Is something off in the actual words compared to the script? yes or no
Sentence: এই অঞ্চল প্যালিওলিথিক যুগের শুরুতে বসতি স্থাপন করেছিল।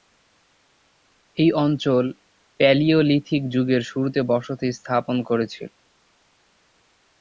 no